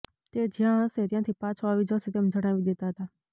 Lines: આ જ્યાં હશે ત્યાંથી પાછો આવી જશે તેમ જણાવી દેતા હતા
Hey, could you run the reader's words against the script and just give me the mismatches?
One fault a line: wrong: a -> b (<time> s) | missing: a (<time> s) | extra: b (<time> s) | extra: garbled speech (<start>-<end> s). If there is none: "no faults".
wrong: આ -> તે (0.3 s)